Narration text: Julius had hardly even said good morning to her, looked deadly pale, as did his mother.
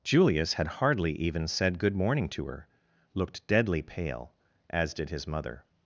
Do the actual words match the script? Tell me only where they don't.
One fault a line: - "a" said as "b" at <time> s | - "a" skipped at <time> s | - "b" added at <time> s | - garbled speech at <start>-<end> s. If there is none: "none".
none